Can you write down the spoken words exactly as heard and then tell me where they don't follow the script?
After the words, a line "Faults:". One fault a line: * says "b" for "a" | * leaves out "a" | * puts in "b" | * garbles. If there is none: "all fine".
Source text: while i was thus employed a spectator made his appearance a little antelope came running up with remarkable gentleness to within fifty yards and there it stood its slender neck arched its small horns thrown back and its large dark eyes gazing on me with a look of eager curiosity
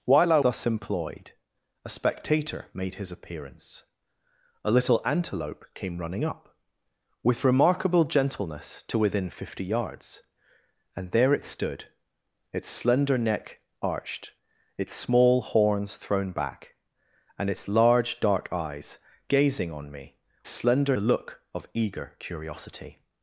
while i thus employed a spectator made his appearance a little antelope came running up with remarkable gentleness to within fifty yards and there it stood its slender neck arched its small horns thrown back and its large dark eyes gazing on me slender a look of eager curiosity
Faults:
* leaves out "was"
* says "slender" for "with"